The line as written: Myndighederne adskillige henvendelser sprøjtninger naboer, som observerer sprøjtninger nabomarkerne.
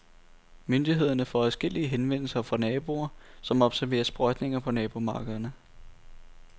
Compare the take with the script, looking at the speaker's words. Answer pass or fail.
fail